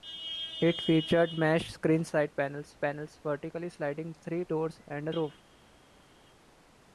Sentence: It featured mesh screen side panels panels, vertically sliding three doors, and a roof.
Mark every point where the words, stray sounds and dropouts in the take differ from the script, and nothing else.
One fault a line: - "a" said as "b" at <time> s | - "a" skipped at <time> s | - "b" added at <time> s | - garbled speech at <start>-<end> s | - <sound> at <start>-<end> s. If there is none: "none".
none